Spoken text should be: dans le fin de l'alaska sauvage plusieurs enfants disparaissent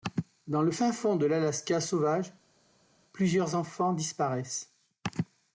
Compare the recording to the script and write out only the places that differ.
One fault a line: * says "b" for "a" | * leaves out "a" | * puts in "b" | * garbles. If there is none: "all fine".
* puts in "fond"